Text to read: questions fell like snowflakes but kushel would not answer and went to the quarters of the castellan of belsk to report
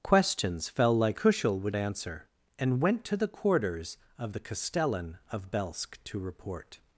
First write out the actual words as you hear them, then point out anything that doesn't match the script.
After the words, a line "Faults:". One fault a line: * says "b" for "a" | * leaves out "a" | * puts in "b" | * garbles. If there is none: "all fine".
questions fell like kushel would answer and went to the quarters of the castellan of belsk to report
Faults:
* leaves out "snowflakes but"
* leaves out "not"